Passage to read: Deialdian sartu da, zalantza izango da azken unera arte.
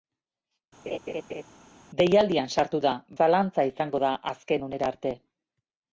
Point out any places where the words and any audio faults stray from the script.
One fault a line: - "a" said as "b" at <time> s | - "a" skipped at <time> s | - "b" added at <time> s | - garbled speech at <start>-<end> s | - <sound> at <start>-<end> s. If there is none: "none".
- laugh at 0.9-1.4 s